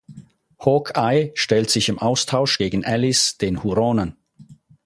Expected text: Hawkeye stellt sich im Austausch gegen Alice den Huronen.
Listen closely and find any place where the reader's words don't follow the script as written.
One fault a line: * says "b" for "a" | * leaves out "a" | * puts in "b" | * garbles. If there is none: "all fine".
all fine